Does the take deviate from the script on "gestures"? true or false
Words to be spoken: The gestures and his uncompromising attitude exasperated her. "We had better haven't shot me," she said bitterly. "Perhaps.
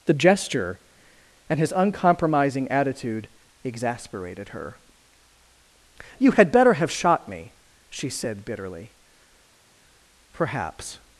true